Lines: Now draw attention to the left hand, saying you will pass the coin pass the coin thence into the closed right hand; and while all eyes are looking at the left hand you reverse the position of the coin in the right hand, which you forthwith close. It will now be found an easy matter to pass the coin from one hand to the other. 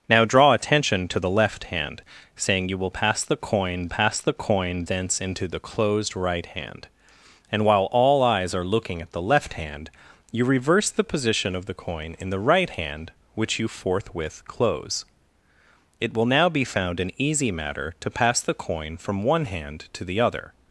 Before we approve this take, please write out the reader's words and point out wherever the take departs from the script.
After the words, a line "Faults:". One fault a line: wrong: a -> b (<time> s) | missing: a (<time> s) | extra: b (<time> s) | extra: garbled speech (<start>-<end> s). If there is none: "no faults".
Now draw attention to the left hand, saying you will pass the coin pass the coin thence into the closed right hand; and while all eyes are looking at the left hand you reverse the position of the coin in the right hand, which you forthwith close. It will now be found an easy matter to pass the coin from one hand to the other.
Faults:
no faults